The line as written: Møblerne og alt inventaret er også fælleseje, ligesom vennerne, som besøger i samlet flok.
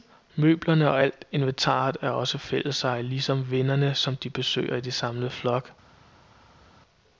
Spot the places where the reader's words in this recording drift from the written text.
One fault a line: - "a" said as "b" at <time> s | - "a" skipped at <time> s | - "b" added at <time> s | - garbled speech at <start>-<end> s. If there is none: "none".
- "de" added at 4.2 s